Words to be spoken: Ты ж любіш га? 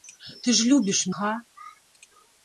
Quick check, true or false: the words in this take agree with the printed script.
true